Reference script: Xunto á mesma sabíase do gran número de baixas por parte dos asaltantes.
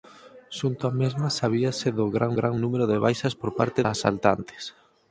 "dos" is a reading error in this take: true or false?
true